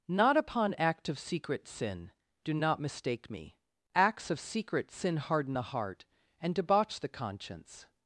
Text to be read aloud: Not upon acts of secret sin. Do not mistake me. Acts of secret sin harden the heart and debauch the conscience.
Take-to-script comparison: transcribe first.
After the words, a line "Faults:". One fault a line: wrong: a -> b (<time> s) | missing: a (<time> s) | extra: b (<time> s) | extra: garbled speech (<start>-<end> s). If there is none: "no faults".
Not upon act of secret sin. Do not mistake me. Acts of secret sin harden the heart and debauch the conscience.
Faults:
wrong: acts -> act (0.8 s)